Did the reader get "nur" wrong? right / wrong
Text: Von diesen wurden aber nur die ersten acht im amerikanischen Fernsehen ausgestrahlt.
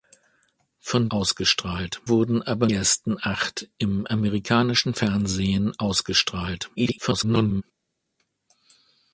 wrong